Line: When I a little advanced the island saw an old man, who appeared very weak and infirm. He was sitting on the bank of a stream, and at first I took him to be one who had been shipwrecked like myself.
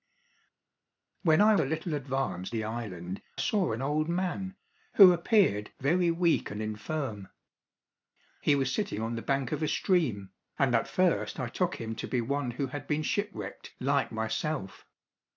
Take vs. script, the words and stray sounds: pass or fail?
pass